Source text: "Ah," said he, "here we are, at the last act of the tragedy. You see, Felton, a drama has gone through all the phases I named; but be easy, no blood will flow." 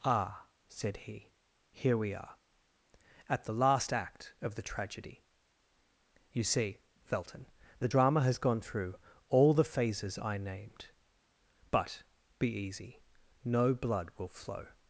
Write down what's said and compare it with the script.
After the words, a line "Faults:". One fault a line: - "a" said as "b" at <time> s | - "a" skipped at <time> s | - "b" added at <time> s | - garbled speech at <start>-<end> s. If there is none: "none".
"Ah," said he, "here we are, at the last act of the tragedy. You see, Felton, the drama has gone through all the phases I named; but be easy, no blood will flow."
Faults:
- "a" said as "the" at 7.8 s